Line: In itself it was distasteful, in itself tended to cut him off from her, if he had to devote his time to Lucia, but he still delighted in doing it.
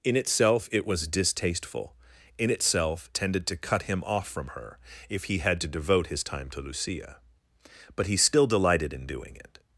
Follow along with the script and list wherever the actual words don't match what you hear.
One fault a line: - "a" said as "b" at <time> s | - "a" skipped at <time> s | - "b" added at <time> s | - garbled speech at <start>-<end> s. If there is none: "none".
none